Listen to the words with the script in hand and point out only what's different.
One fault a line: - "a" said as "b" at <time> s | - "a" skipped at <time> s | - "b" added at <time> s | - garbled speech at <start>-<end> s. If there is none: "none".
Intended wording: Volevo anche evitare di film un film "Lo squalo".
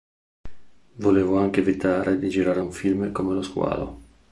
- "film" said as "girare" at 2.3 s
- "come" added at 3.1 s